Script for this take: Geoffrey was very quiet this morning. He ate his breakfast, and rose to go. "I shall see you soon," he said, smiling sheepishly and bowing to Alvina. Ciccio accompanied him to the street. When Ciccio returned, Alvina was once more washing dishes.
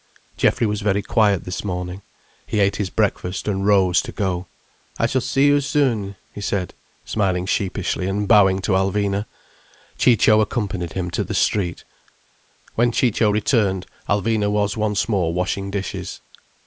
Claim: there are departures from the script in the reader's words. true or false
false